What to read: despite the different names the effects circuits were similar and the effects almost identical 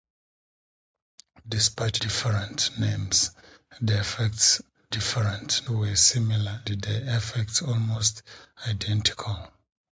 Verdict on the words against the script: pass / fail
fail